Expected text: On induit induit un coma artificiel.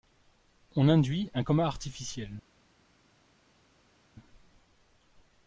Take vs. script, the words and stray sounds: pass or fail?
fail